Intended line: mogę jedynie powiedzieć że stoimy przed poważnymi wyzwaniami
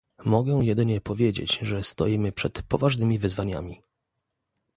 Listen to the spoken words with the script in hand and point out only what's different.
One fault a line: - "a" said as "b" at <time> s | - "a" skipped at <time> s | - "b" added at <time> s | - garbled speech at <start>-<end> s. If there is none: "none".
none